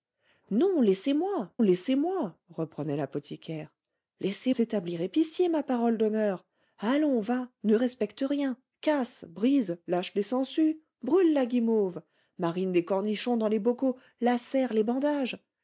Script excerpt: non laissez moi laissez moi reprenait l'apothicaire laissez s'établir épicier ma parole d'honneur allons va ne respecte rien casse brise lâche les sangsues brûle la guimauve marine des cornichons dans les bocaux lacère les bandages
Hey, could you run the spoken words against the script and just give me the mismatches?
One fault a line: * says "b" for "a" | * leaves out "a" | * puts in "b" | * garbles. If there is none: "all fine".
all fine